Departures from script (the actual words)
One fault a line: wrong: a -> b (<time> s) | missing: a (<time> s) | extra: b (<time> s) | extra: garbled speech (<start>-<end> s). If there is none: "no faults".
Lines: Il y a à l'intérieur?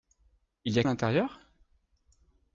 no faults